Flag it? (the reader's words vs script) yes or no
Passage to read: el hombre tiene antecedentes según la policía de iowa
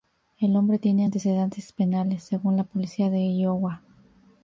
yes